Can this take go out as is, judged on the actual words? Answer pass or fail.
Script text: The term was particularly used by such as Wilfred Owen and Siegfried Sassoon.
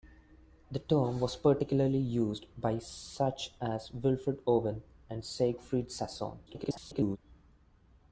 fail